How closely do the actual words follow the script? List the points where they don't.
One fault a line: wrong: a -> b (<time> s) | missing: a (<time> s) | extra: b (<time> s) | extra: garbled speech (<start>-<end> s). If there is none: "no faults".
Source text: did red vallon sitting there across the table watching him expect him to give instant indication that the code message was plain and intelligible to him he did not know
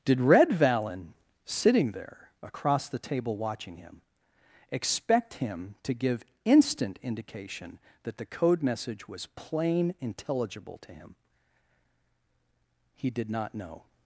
missing: and (9.9 s)